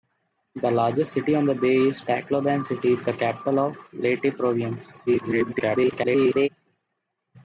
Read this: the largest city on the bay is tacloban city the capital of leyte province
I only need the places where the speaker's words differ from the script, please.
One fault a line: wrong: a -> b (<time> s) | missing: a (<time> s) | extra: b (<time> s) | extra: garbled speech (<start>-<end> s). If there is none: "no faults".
extra: garbled speech (5.1-6.5 s)